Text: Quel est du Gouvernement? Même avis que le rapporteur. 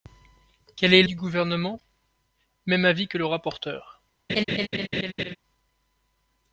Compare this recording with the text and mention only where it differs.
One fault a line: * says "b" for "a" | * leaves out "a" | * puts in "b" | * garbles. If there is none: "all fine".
all fine